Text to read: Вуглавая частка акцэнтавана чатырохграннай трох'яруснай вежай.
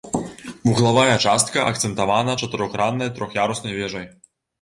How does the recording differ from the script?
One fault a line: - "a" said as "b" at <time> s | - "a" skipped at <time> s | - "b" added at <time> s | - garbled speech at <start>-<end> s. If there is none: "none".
none